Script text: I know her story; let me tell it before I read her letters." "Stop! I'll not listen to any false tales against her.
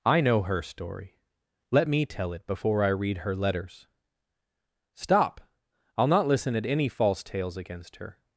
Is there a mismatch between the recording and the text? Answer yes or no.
yes